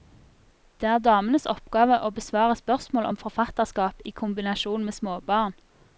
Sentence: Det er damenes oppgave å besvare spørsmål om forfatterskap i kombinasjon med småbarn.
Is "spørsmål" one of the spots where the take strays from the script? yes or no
no